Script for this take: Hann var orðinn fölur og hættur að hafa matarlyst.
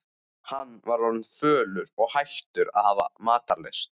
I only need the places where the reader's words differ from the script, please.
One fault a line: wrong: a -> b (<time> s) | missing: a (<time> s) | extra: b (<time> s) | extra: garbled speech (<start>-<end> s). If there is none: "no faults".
no faults